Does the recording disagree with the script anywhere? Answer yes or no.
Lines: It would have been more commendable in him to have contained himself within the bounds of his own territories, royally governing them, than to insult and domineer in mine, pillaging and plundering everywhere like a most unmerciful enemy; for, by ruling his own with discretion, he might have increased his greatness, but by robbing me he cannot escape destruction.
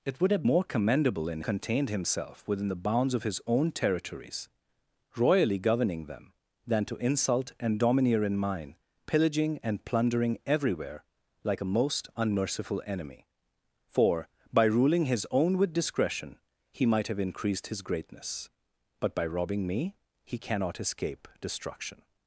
yes